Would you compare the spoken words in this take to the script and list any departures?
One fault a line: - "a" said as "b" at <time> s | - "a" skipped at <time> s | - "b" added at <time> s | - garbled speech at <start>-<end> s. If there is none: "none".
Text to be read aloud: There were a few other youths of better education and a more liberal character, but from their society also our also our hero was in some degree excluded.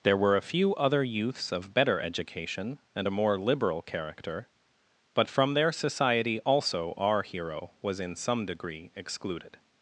- "also our" skipped at 7.2 s